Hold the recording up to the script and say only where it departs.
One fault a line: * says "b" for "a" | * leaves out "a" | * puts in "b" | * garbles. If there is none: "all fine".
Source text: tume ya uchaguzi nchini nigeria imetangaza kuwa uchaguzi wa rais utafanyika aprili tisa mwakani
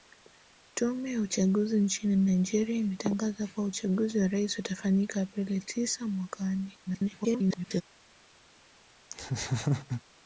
* garbles